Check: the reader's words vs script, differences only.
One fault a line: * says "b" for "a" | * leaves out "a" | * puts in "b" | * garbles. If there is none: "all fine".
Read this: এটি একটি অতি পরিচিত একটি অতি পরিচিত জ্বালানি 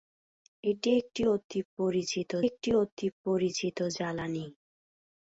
all fine